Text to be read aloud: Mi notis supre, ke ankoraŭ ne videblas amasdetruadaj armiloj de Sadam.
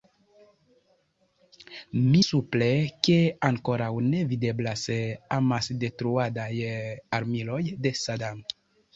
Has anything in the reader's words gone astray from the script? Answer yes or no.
yes